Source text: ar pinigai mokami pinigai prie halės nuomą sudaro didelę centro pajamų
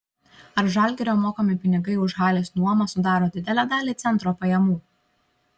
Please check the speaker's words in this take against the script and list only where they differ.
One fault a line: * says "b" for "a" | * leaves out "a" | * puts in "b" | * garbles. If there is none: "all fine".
* says "žalgirio" for "pinigai"
* says "už" for "prie"
* puts in "dalį"